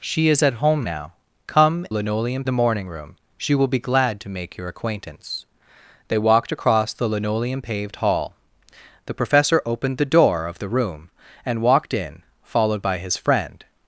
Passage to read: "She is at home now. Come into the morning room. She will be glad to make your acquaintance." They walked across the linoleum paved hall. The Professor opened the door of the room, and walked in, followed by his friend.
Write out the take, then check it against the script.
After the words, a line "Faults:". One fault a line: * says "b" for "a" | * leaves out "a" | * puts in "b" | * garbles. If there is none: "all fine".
"She is at home now. Come linoleum the morning room. She will be glad to make your acquaintance." They walked across the linoleum paved hall. The Professor opened the door of the room, and walked in, followed by his friend.
Faults:
* says "linoleum" for "into"